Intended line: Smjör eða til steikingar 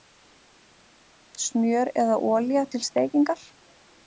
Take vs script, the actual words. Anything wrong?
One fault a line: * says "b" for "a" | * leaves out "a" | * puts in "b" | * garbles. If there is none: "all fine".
* puts in "olía"